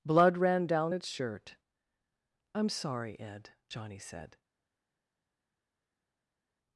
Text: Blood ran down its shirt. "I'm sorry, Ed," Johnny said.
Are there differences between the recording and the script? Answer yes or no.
no